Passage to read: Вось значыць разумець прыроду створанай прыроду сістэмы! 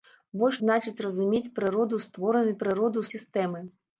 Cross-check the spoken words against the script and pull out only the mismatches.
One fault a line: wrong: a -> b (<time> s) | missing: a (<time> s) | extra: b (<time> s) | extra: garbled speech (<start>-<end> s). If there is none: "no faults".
no faults